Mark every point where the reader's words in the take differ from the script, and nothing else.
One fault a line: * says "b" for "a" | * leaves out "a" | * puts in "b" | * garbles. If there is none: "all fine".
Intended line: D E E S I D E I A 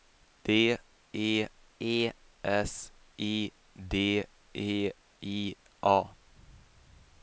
all fine